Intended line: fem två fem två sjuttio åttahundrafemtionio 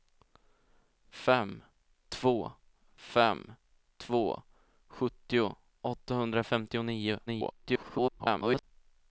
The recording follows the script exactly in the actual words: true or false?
false